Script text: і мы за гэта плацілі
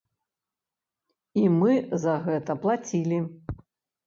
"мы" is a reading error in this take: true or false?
false